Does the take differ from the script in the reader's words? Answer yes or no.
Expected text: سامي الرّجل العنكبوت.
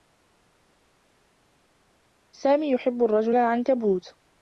yes